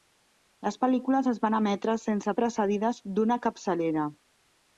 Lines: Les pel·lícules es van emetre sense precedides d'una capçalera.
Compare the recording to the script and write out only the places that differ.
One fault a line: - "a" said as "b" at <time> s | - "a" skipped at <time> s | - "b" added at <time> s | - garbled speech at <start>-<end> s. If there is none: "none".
none